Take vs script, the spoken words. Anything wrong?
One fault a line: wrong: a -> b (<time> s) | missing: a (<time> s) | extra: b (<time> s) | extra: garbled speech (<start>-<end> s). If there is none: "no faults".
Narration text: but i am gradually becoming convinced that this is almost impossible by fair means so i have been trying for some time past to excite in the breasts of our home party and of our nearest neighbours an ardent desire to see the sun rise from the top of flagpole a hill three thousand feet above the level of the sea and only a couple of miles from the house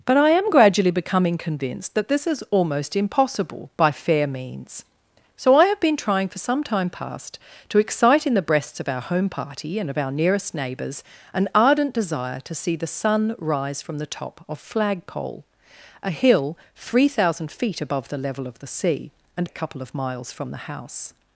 missing: only (19.5 s)